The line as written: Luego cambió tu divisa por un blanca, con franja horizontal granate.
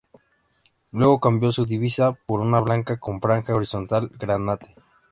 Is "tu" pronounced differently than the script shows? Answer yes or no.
yes